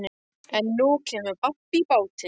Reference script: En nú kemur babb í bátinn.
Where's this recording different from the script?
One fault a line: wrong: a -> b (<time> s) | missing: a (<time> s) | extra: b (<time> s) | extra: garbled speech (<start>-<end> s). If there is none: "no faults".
no faults